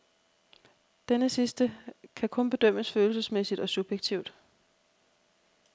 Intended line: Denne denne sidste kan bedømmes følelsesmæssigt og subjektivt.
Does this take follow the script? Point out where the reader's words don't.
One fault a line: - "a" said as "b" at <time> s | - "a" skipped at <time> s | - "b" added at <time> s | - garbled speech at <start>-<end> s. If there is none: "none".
- "denne" skipped at 1.3 s
- "kun" added at 2.3 s